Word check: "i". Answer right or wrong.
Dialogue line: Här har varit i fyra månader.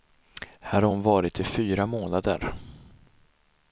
right